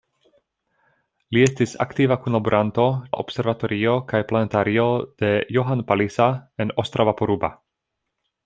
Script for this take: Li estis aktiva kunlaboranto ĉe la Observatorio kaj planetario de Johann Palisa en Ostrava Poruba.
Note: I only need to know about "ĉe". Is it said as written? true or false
false